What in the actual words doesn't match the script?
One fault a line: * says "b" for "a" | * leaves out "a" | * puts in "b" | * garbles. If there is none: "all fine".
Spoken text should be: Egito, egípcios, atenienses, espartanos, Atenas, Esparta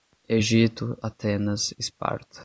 * leaves out "egípcios atenienses espartanos"